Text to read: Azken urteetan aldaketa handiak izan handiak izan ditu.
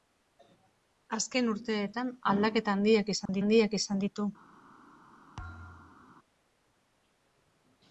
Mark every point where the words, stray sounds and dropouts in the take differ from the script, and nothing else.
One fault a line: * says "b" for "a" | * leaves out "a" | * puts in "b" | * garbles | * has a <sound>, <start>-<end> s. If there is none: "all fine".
* has a dropout, 3.3-3.3 s
* has a thud, 5.4-6.1 s